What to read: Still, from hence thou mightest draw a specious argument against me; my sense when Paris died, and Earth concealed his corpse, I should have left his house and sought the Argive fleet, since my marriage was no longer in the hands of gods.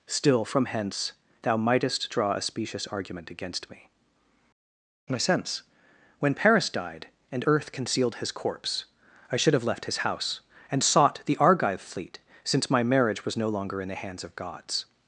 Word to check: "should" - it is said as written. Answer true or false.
true